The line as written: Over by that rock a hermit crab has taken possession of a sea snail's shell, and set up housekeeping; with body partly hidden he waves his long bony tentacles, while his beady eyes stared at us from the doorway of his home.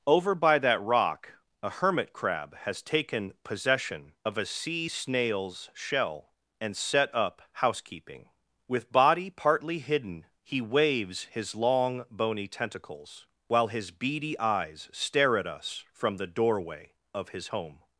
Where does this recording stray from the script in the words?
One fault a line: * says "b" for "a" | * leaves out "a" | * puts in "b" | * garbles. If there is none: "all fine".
* says "stare" for "stared"